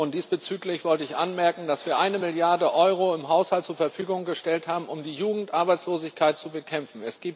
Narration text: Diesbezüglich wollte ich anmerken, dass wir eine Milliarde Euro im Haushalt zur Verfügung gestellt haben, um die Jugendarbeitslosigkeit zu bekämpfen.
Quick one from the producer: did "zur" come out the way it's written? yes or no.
yes